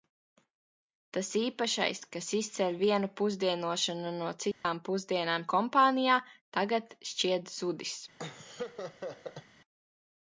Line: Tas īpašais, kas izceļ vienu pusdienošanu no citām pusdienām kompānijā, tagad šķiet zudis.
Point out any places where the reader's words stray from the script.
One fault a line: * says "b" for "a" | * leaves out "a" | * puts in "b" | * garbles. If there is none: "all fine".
all fine